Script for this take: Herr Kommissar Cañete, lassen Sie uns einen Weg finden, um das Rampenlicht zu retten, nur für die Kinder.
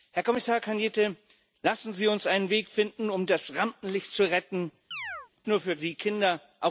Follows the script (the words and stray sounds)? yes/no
no